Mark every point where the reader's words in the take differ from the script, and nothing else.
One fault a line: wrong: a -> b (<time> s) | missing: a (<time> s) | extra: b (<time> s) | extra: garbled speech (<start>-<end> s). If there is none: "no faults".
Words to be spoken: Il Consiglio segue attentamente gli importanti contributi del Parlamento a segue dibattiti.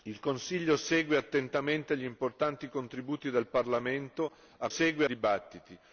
no faults